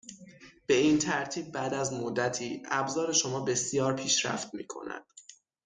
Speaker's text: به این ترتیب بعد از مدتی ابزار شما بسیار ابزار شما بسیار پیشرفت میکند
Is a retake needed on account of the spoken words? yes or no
yes